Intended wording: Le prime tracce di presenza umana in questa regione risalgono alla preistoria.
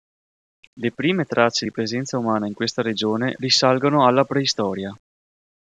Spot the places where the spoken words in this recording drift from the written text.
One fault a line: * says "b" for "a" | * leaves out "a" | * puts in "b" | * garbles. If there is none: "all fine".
all fine